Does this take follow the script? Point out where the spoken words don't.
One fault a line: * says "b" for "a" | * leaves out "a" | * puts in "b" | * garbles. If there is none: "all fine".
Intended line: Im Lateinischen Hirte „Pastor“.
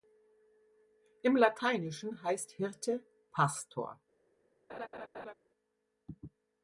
* puts in "heißt"